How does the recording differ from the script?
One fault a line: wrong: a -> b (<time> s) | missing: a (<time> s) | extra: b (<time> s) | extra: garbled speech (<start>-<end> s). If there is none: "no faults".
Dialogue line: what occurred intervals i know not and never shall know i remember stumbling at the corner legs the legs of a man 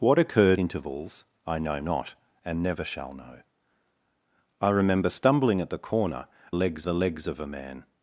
no faults